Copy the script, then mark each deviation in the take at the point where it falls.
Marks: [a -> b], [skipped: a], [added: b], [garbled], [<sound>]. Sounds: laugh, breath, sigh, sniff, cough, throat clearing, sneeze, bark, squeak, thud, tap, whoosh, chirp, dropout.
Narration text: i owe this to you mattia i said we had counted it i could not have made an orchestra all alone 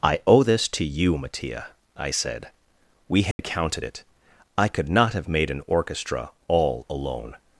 i owe this to you mattia i said we had [dropout] counted it i could not have made an orchestra all alone